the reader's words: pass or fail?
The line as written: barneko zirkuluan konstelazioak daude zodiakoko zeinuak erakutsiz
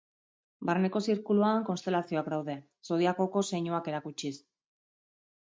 pass